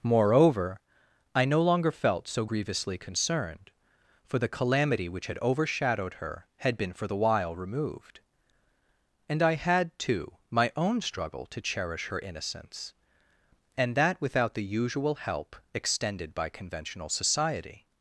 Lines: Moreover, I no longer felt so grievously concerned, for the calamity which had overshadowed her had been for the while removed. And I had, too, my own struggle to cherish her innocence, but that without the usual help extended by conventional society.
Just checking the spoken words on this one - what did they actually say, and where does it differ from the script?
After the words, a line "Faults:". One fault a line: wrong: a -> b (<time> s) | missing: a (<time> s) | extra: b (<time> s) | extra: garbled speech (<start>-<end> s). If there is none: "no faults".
Moreover, I no longer felt so grievously concerned, for the calamity which had overshadowed her had been for the while removed. And I had, too, my own struggle to cherish her innocence, and that without the usual help extended by conventional society.
Faults:
wrong: but -> and (13.8 s)